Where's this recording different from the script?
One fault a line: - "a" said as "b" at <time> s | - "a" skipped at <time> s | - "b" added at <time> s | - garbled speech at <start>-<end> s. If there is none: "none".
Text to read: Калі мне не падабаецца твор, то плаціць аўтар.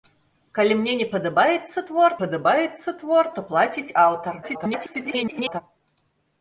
- "падабаецца твор" added at 2.2 s
- garbled speech at 4.4-5.6 s